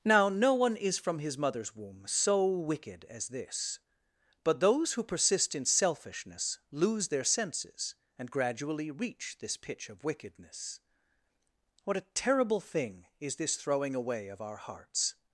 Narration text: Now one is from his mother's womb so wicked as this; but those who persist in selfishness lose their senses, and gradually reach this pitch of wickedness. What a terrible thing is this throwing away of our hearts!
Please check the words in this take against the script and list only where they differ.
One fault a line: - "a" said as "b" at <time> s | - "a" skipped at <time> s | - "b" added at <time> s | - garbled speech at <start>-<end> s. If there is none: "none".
- "no" added at 0.3 s